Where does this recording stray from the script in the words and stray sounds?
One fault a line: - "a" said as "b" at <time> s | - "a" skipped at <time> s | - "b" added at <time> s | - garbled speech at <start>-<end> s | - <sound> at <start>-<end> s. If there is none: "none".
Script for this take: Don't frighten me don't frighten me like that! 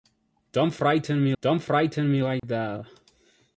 - dropout at 2.4-2.4 s